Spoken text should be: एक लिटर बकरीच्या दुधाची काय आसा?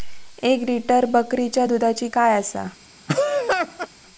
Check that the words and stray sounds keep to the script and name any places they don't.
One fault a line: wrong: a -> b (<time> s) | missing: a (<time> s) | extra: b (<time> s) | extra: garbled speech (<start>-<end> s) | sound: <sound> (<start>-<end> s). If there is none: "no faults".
sound: laugh (3.1-3.9 s)